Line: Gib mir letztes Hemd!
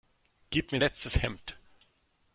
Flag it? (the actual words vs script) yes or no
no